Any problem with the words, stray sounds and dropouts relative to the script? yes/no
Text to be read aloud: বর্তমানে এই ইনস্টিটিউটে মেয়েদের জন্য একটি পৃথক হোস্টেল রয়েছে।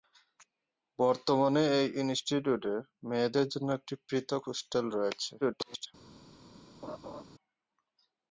yes